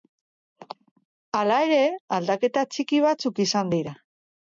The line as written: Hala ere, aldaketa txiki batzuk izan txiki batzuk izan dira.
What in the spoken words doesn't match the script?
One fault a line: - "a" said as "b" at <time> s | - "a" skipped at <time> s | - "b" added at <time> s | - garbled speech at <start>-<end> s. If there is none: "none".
- "txiki batzuk izan" skipped at 3.8 s